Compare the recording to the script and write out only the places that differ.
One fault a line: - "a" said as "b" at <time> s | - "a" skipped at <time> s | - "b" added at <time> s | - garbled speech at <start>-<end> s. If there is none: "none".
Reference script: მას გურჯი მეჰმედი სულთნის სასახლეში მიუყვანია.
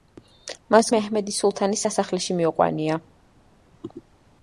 - "გურჯი" skipped at 0.9 s